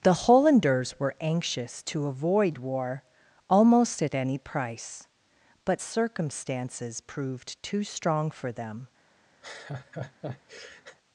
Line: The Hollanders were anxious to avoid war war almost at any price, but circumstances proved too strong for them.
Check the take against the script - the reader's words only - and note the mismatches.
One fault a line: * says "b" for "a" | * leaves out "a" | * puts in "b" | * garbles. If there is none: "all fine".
* leaves out "war"